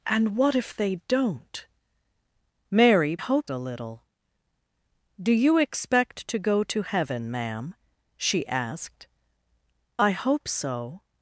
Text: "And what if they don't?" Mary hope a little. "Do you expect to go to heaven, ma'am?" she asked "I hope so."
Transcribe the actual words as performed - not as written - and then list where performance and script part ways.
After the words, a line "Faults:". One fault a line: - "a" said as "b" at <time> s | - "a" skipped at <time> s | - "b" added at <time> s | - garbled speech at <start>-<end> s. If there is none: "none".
"And what if they don't?" Mary hope a little. "Do you expect to go to heaven, ma'am?" she asked "I hope so."
Faults:
none